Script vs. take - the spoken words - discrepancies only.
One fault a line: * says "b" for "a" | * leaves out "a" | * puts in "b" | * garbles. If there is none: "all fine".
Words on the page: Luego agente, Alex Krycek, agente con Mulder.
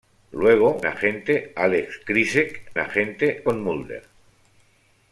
all fine